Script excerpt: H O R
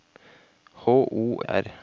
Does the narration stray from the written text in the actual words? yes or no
no